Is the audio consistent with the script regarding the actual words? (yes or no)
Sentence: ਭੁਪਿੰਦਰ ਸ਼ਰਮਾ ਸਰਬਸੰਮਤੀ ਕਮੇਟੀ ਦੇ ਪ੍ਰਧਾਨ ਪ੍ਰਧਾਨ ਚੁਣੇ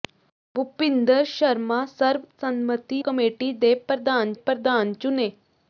yes